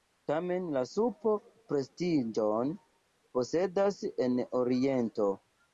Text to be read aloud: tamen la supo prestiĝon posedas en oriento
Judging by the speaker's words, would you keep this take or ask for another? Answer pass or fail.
pass